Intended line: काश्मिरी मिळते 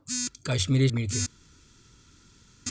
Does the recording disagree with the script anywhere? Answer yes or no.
no